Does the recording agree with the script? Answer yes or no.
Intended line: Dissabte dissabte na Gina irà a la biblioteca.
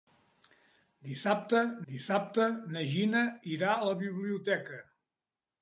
yes